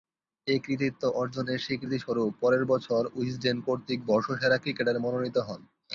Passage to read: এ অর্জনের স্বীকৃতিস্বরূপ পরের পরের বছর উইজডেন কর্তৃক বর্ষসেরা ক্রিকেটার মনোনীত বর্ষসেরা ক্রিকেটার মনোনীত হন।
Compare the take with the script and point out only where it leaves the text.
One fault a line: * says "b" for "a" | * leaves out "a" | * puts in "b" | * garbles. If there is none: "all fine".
* puts in "কৃতিত্ব"
* leaves out "পরের"
* leaves out "বর্ষসেরা ক্রিকেটার মনোনীত"